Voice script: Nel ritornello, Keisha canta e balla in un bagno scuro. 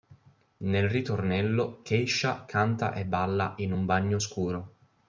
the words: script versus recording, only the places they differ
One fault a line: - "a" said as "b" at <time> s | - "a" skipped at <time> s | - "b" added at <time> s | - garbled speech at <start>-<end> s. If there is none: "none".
none